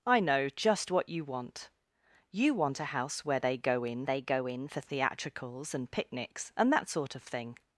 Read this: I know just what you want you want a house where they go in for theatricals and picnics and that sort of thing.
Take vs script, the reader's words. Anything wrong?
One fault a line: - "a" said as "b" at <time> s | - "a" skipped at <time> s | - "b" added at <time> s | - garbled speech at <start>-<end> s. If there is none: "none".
- "they go in" added at 4.1 s